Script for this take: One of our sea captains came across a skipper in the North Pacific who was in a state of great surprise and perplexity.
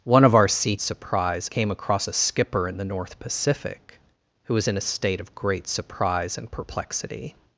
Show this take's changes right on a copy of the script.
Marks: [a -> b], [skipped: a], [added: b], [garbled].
One of our sea [captains -> surprise] came across a skipper in the North Pacific who was in a state of great surprise and perplexity.